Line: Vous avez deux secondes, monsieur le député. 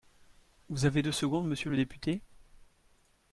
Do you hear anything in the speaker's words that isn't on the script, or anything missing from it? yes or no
no